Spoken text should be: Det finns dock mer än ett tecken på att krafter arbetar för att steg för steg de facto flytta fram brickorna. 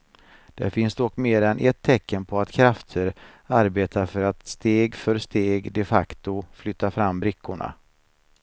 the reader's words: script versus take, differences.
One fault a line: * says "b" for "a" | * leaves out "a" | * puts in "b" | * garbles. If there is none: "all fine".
all fine